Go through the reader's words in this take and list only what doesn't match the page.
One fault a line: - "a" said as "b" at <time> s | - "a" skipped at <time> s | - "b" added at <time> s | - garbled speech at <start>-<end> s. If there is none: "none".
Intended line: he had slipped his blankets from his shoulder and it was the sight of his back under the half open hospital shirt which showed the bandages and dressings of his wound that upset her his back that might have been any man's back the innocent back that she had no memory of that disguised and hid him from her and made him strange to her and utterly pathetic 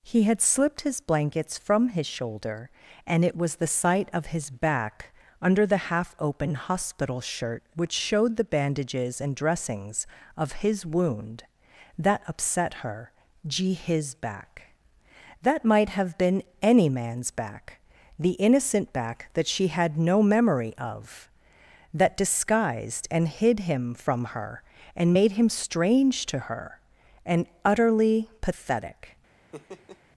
- "gee" added at 13.5 s